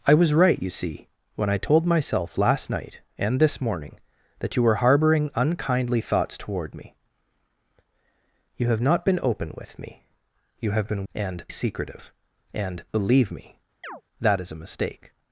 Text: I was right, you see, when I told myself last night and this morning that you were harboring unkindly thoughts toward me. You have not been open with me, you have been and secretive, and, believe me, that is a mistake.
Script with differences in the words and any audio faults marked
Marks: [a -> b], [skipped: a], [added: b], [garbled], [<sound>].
I was right, you see, when I told myself last night and this morning that you were harboring unkindly thoughts toward me. You have not been open with me, you have been and secretive, and, believe me, [chirp] that is a mistake.